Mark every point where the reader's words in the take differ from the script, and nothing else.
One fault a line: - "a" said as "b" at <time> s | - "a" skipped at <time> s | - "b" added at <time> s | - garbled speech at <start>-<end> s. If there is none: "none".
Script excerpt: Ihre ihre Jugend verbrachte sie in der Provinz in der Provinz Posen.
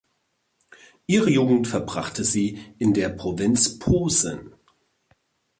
- "ihre" skipped at 1.3 s
- "in der Provinz" skipped at 3.8 s